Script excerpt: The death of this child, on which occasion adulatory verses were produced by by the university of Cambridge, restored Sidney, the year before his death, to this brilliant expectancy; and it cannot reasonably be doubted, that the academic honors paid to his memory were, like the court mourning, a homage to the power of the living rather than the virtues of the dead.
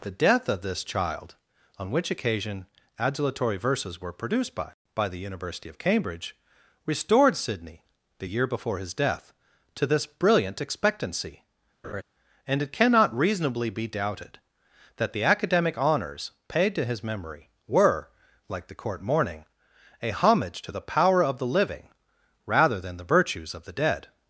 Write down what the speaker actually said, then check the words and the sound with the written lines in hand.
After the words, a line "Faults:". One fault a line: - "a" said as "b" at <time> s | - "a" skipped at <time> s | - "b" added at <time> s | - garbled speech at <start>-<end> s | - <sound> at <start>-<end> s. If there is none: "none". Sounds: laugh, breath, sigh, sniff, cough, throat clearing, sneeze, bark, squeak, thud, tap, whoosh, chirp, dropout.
The death of this child, on which occasion adulatory verses were produced by by the university of Cambridge, restored Sidney, the year before his death, to this brilliant expectancy; and it cannot reasonably be doubted, that the academic honors paid to his memory were, like the court mourning, a homage to the power of the living rather than the virtues of the dead.
Faults:
- laugh at 11.8-12.0 s